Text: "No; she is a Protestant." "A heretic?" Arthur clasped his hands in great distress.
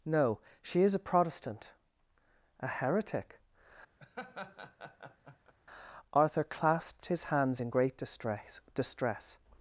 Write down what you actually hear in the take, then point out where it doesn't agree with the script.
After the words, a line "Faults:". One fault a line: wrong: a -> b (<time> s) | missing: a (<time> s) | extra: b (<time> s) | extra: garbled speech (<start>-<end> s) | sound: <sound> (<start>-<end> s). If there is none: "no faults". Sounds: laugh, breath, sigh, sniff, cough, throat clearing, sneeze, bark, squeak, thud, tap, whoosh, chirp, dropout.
"No; she is a Protestant." "A heretic?" Arthur clasped his hands in great distress distress.
Faults:
sound: laugh (4.0-5.5 s)
extra: distress (8.7 s)